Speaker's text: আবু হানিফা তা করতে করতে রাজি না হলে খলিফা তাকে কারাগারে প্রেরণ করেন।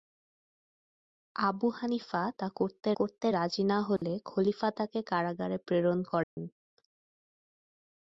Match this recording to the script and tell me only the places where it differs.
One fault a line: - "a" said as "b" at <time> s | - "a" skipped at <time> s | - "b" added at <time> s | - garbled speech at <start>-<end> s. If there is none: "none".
none